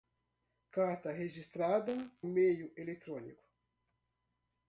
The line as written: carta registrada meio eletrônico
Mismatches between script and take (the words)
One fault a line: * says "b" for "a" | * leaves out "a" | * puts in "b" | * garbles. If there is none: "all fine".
all fine